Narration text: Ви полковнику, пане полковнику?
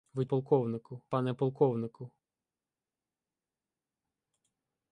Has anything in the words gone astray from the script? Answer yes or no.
no